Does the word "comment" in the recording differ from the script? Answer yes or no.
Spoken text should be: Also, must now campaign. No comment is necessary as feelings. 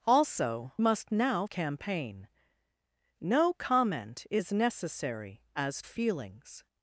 no